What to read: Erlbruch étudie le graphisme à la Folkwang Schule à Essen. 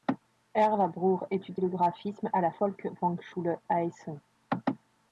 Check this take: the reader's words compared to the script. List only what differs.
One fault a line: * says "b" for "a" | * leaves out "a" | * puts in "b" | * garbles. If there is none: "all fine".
all fine